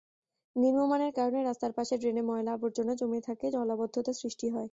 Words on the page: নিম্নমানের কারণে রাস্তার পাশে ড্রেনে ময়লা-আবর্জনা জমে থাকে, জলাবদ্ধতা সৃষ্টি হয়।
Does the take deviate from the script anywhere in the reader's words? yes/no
no